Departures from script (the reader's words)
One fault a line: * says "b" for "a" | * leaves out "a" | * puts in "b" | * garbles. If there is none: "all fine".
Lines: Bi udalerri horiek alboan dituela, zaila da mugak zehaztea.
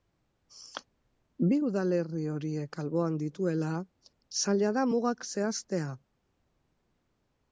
all fine